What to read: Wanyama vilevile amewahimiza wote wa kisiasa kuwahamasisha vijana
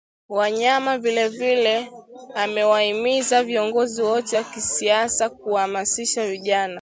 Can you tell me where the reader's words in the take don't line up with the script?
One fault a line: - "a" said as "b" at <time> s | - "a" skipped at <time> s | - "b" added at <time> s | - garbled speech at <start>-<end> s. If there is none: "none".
- "viongozi" added at 3.4 s